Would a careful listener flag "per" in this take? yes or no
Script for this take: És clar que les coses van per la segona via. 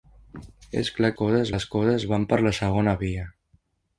no